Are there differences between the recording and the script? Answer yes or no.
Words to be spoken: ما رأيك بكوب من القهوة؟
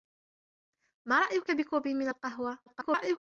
yes